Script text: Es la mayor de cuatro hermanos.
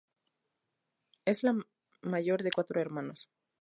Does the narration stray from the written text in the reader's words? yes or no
no